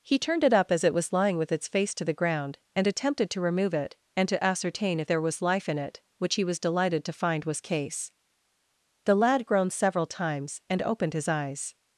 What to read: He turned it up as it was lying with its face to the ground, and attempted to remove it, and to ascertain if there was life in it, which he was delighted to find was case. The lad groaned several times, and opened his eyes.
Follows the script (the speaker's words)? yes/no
yes